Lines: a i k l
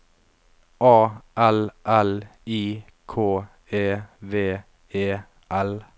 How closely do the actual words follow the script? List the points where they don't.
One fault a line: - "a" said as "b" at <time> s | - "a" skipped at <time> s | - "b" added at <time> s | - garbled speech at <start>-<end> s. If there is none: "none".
- "l l" added at 1.4 s
- "e v e" added at 3.7 s